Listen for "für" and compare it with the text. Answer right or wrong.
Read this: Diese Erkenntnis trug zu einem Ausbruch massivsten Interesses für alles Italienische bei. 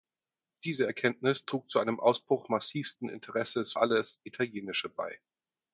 wrong